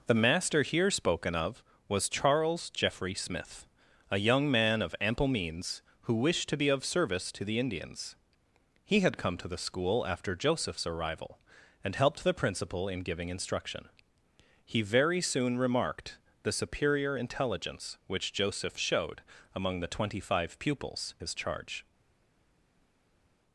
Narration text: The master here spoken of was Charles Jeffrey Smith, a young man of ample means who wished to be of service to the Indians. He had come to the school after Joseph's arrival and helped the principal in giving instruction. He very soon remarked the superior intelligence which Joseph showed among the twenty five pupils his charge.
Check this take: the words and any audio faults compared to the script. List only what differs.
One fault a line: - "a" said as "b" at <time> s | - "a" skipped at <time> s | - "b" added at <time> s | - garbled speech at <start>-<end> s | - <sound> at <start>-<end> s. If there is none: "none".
none